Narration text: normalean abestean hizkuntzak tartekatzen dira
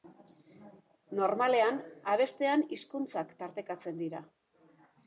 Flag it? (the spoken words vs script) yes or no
no